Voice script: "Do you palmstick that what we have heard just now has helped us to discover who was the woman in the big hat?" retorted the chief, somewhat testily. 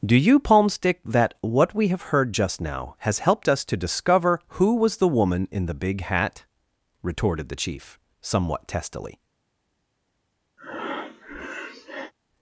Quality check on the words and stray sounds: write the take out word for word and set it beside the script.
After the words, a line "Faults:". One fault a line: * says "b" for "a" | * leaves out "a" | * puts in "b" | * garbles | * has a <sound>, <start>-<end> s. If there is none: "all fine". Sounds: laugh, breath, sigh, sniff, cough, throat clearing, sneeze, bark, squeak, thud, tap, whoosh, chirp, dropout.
"Do you palmstick that what we have heard just now has helped us to discover who was the woman in the big hat?" retorted the chief, somewhat testily.
Faults:
* has a breath, 10.6-12.1 s